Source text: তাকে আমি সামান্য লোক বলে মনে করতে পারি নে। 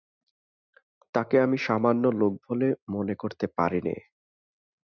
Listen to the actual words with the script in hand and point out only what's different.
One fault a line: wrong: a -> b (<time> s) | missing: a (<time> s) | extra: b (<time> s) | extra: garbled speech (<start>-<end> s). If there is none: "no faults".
no faults